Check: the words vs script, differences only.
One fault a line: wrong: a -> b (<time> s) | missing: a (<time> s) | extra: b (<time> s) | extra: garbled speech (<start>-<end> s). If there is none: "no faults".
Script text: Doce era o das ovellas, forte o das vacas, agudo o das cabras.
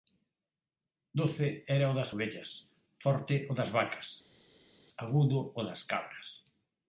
no faults